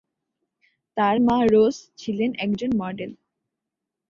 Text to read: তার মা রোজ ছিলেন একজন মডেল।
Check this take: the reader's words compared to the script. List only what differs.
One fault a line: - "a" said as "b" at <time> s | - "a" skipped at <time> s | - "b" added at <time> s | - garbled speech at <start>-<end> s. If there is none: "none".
none